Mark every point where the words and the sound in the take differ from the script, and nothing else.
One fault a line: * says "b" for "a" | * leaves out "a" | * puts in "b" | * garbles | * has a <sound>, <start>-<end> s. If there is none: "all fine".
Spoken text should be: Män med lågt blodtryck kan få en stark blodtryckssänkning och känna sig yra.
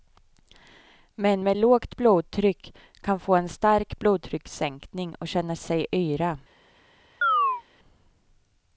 * has a chirp, 7.2-7.6 s